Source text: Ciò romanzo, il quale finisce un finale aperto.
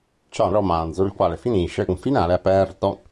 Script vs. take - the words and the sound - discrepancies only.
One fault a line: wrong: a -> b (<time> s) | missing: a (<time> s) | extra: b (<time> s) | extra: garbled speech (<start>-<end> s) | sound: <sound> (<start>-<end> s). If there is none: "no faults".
no faults